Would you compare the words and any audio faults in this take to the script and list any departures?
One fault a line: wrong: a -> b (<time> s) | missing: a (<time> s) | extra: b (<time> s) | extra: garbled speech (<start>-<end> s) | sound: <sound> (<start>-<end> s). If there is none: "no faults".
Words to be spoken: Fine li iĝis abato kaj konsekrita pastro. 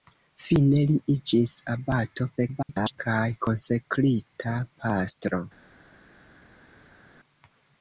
extra: garbled speech (2.4-3.0 s)